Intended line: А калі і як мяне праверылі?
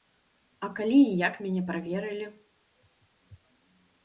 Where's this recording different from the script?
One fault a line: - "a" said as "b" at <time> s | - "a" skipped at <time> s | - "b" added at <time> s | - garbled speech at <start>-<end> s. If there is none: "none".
none